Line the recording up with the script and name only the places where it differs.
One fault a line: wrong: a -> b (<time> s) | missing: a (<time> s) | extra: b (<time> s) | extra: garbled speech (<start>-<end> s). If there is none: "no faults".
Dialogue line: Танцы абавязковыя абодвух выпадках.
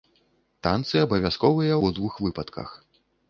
no faults